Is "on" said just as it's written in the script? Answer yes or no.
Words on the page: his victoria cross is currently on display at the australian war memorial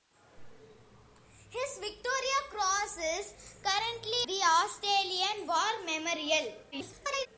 no